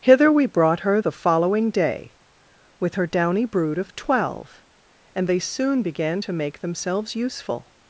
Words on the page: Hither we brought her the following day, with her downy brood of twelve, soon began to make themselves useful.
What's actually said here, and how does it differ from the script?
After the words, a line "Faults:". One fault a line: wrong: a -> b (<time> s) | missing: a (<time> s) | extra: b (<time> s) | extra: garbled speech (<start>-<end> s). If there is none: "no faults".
Hither we brought her the following day, with her downy brood of twelve, and they soon began to make themselves useful.
Faults:
extra: and they (5.1 s)